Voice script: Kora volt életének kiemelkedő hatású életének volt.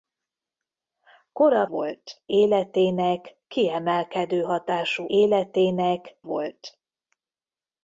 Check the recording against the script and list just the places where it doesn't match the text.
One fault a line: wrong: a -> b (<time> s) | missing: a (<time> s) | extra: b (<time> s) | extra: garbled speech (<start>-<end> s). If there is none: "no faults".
no faults